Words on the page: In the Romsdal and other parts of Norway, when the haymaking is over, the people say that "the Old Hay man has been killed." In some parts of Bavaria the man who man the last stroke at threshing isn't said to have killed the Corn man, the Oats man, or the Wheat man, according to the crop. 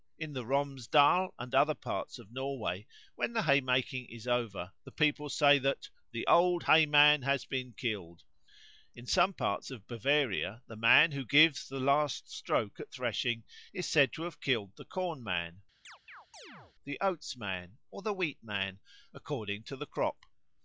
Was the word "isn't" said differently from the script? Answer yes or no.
yes